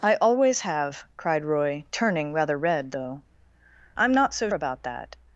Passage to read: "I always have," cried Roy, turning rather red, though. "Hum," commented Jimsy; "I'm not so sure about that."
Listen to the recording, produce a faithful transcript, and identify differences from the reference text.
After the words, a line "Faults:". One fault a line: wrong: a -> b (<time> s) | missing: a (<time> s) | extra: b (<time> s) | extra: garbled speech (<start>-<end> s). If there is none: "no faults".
"I always have," cried Roy, turning rather red, though; ""I'm not so about that."
Faults:
missing: Hum commented Jimsy (3.2 s)
missing: sure (4.5 s)